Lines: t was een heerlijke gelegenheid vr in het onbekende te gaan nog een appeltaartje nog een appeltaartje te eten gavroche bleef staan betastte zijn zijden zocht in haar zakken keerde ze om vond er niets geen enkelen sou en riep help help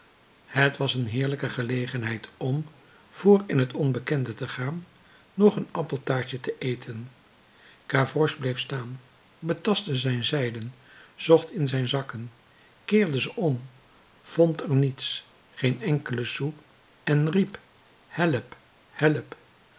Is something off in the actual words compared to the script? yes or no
yes